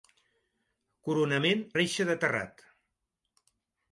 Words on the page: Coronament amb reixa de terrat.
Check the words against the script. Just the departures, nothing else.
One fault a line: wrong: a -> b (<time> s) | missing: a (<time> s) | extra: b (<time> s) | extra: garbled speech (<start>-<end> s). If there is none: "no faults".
missing: amb (1.6 s)